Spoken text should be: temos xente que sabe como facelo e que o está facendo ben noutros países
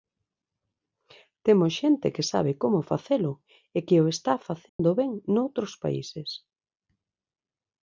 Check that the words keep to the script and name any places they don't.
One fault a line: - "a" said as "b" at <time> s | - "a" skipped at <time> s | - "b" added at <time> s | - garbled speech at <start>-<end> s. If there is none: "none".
none